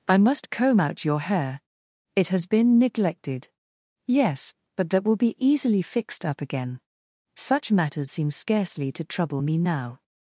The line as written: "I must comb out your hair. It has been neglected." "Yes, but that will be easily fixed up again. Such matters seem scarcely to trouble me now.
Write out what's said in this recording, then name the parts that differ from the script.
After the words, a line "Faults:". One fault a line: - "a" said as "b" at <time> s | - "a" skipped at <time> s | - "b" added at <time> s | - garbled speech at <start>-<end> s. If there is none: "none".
"I must comb out your hair. It has been neglected." "Yes, but that will be easily fixed up again. Such matters seem scarcely to trouble me now.
Faults:
none